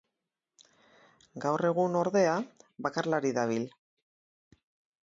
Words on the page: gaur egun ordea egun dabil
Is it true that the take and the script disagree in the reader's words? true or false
true